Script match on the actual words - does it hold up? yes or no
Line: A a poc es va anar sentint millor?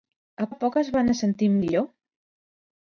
yes